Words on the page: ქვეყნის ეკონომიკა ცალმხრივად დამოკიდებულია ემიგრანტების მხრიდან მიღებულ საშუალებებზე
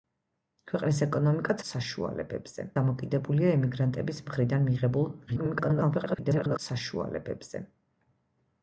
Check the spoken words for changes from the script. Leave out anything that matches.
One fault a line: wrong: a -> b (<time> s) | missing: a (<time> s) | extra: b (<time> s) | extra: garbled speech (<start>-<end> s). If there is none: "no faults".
wrong: ცალმხრივად -> საშუალებებზე (1.7 s)
extra: garbled speech (5.3-6.6 s)